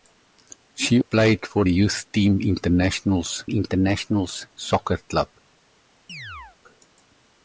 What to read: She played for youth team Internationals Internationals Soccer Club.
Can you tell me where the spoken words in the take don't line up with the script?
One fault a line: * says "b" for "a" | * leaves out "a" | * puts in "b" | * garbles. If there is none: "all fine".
all fine